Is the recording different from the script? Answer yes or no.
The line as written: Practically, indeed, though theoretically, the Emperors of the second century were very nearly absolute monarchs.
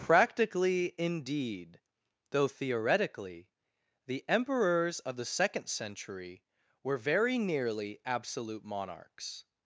no